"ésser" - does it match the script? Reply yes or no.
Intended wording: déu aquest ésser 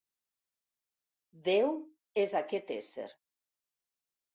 yes